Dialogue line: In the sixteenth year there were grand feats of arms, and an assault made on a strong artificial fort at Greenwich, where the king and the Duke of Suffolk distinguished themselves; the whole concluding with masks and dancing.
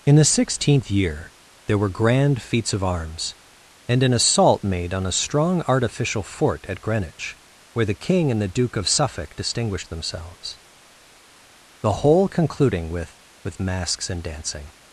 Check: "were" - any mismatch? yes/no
no